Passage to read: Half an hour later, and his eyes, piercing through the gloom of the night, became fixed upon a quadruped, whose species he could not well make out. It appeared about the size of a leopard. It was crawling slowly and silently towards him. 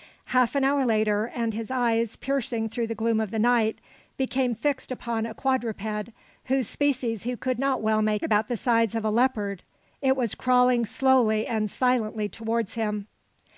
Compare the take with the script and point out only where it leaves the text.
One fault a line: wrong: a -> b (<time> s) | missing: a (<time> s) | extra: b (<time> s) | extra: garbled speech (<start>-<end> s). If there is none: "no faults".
missing: out It appeared (8.2 s)